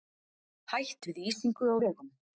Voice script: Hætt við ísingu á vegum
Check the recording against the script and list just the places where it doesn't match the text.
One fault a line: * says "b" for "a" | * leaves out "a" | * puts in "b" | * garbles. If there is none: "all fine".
all fine